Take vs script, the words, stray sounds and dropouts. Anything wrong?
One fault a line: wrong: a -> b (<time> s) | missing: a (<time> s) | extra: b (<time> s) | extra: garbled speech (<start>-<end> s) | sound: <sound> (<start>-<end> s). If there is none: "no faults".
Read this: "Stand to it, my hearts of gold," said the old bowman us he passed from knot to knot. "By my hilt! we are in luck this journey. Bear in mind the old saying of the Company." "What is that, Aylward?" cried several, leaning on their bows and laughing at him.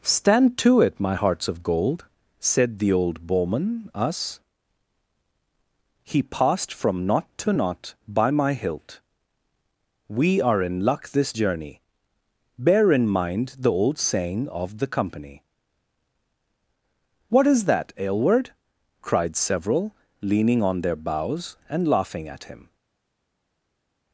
no faults